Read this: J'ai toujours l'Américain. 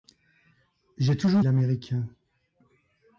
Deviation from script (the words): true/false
false